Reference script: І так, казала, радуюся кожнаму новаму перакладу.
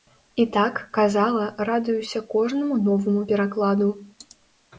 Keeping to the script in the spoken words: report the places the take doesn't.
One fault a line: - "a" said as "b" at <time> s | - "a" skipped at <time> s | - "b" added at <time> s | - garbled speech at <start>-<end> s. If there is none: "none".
none